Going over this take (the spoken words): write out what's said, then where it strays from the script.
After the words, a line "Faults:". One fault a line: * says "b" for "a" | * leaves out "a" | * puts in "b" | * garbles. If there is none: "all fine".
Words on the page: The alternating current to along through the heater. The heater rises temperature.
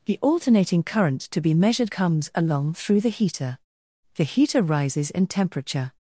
The alternating current to be measured comes along through the heater. The heater rises in temperature.
Faults:
* puts in "be measured comes"
* puts in "in"